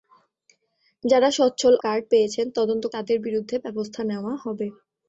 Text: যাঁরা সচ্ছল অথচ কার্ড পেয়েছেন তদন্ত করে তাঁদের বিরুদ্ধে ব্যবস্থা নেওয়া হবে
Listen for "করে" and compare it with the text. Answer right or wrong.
wrong